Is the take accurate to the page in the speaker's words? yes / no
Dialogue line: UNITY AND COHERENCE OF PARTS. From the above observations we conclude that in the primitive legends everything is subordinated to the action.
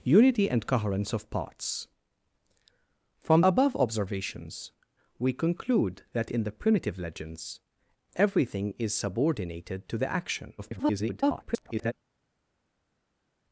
no